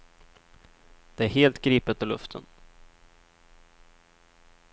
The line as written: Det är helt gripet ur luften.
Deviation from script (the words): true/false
false